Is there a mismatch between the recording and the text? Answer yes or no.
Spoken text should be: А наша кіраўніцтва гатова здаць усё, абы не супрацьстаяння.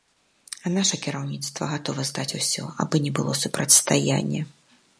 yes